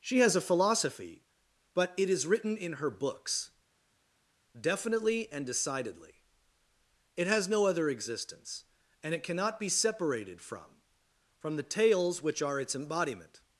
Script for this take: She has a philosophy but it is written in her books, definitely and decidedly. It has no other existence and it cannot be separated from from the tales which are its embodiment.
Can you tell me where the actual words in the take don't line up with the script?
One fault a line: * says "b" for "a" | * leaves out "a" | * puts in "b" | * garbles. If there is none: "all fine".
all fine